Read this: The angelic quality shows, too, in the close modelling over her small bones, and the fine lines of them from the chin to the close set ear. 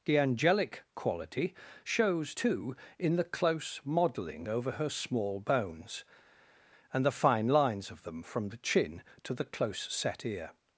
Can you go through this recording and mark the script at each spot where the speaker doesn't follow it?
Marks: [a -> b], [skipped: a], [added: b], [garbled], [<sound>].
The angelic quality shows, too, in the close modelling over her small bones, and the fine lines of them from the chin to the close set ear.